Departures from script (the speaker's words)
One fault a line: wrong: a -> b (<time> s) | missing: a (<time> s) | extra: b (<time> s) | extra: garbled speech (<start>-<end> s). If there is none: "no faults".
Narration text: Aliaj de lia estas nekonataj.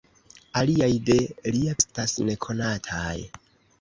no faults